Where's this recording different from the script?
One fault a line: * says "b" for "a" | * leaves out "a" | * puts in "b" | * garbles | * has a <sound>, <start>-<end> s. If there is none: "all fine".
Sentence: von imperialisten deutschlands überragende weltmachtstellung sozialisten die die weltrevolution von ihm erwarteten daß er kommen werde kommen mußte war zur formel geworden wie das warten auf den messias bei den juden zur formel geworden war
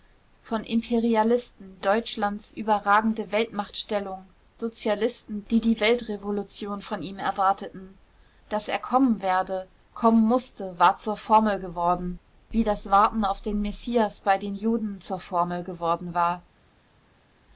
all fine